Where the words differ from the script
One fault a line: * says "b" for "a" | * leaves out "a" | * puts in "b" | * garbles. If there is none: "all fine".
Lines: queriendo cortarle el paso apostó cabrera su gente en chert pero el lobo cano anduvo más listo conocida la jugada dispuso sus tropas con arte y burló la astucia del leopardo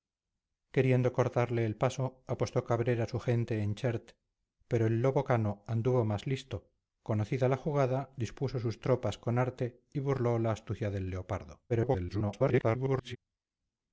* garbles